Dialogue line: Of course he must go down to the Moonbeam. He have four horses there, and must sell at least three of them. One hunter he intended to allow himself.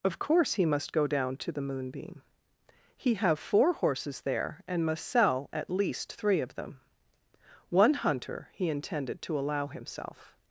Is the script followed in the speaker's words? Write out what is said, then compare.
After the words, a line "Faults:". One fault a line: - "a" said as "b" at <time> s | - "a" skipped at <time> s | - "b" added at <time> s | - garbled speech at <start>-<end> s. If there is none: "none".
Of course he must go down to the Moonbeam. He have four horses there, and must sell at least three of them. One hunter he intended to allow himself.
Faults:
none